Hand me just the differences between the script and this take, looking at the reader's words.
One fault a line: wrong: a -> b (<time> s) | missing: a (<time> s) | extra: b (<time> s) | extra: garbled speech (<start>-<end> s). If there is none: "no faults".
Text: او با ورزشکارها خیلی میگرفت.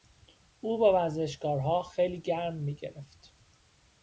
extra: گرم (2.2 s)